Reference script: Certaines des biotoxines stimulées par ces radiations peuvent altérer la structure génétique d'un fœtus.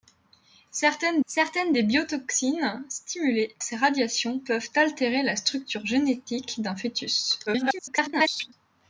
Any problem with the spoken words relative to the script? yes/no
yes